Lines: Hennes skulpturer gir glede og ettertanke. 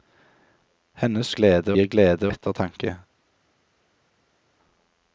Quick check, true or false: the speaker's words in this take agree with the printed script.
false